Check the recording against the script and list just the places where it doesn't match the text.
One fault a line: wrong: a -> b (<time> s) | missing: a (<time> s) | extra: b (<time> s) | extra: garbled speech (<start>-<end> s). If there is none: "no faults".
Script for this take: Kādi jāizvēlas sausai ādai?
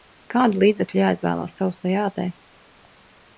extra: līdzekļi (0.6 s)